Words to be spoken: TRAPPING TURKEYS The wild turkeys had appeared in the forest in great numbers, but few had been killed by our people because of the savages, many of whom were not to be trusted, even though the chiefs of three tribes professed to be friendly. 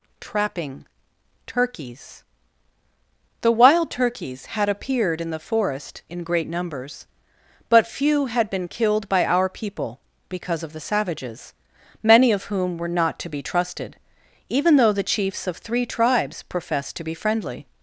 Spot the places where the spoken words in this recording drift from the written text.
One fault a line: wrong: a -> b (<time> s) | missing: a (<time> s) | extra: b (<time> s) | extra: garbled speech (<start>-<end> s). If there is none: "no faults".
no faults